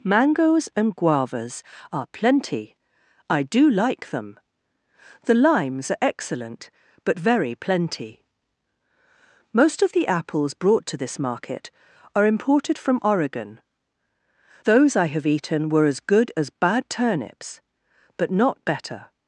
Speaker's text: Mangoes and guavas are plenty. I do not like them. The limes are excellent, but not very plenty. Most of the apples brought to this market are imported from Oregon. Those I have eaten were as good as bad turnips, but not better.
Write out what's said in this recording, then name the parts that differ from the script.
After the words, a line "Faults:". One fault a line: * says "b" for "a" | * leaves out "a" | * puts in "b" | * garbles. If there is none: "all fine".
Mangoes and guavas are plenty. I do like them. The limes are excellent, but very plenty. Most of the apples brought to this market are imported from Oregon. Those I have eaten were as good as bad turnips, but not better.
Faults:
* leaves out "not"
* leaves out "not"